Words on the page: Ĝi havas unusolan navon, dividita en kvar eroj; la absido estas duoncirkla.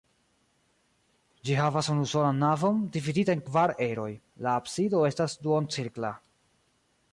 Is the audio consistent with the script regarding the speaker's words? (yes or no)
yes